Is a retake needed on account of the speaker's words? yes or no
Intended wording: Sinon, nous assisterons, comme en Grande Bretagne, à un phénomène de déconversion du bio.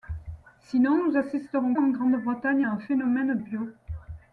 yes